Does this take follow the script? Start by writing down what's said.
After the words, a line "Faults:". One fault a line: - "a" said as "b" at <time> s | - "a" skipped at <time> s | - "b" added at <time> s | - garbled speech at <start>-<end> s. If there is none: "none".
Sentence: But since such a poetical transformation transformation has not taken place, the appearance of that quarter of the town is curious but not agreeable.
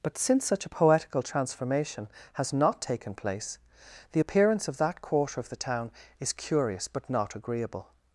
But since such a poetical transformation has not taken place, the appearance of that quarter of the town is curious but not agreeable.
Faults:
- "transformation" skipped at 2.1 s